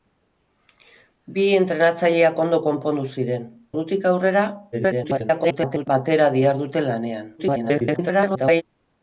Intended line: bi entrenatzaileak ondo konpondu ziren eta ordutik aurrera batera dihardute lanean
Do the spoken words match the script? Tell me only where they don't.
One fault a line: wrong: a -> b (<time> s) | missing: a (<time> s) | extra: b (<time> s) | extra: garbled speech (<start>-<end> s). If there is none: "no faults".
missing: eta (3.5 s)
extra: garbled speech (4.7-5.9 s)
extra: garbled speech (7.4-8.6 s)